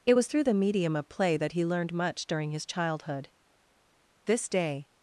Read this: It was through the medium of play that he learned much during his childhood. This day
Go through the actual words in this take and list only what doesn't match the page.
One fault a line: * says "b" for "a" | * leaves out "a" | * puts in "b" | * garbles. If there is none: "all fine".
all fine